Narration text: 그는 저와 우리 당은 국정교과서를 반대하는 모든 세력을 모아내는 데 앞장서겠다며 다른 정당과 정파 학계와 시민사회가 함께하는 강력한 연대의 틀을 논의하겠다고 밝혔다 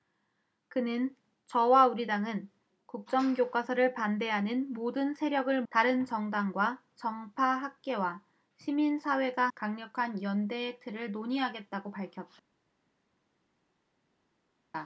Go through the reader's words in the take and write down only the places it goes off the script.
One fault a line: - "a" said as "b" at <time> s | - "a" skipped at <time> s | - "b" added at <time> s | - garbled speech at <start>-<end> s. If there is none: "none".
- "모아내는 데 앞장서겠다며" skipped at 5.6 s
- "함께하는" skipped at 9.5 s